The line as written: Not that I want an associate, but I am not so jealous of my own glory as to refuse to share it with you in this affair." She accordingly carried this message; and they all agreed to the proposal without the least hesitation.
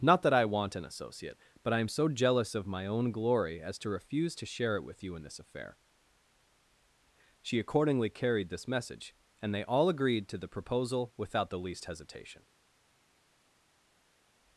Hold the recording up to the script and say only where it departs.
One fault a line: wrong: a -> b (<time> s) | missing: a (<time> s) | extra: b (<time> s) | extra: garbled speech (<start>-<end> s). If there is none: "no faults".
missing: not (1.9 s)